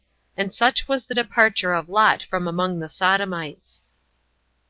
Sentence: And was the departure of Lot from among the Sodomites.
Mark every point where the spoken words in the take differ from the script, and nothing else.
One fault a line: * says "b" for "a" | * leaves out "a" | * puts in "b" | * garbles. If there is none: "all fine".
* puts in "such"